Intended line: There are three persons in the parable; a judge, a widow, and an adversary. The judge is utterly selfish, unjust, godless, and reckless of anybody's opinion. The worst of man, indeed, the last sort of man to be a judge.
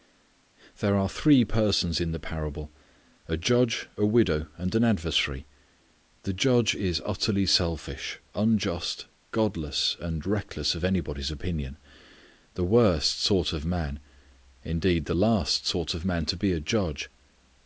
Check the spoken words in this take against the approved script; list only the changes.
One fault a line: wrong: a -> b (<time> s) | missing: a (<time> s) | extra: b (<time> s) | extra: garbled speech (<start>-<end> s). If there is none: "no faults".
extra: sort (13.2 s)